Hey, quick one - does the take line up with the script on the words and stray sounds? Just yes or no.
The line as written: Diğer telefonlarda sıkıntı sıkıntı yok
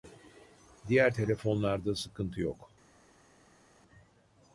no